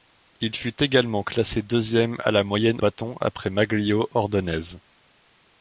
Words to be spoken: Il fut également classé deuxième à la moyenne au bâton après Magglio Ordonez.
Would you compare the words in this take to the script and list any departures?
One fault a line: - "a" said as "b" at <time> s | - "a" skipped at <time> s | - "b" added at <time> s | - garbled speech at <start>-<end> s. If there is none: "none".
- "au" skipped at 2.8 s